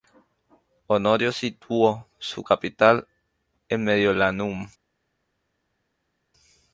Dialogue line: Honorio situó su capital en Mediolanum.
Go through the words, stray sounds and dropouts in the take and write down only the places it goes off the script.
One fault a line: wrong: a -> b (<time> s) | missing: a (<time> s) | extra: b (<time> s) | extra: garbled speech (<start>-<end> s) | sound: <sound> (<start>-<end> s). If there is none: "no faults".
no faults